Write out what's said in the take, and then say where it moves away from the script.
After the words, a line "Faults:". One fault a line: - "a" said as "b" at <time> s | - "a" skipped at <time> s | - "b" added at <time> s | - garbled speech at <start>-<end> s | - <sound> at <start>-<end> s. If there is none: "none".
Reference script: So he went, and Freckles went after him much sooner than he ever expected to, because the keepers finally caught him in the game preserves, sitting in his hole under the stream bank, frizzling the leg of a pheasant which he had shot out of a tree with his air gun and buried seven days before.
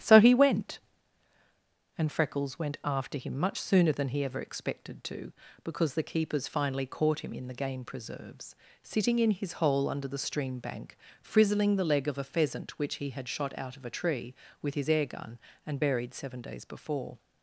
So he went, and Freckles went after him much sooner than he ever expected to, because the keepers finally caught him in the game preserves, sitting in his hole under the stream bank, frizzling the leg of a pheasant which he had shot out of a tree with his air gun and buried seven days before.
Faults:
none